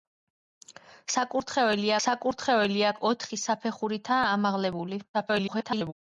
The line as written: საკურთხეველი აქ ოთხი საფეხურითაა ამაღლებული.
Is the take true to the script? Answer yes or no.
no